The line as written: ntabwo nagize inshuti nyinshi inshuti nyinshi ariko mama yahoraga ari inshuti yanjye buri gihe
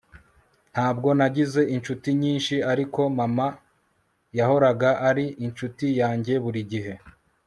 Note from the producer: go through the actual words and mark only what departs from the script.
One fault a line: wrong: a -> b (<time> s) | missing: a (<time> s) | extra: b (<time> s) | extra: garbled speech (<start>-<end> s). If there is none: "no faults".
missing: inshuti nyinshi (2.5 s)